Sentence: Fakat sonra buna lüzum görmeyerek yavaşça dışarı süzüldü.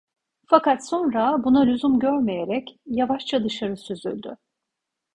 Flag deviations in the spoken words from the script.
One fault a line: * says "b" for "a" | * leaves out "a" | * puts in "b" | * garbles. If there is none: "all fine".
all fine